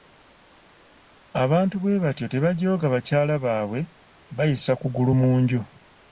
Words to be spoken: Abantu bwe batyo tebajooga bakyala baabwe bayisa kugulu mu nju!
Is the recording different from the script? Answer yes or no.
no